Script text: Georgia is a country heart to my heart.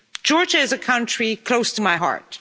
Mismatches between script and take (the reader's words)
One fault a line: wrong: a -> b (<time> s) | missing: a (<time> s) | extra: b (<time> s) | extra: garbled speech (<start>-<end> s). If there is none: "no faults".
wrong: heart -> close (1.4 s)